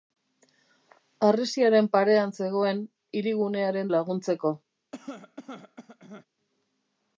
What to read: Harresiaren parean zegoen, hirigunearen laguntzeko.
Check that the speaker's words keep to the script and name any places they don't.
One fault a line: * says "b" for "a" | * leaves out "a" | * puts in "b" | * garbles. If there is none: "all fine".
all fine